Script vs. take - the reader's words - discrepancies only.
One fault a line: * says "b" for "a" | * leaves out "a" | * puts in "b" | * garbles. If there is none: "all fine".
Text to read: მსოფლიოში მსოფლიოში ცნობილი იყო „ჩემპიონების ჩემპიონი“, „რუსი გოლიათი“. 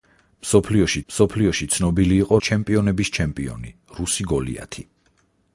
all fine